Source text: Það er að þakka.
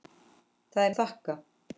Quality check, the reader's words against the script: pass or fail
pass